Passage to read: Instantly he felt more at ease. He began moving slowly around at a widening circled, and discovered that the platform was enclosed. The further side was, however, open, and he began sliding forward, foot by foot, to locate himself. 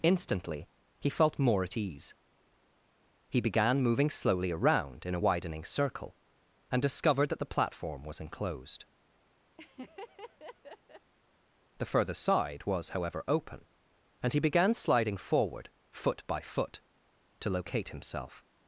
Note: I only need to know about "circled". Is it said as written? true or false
false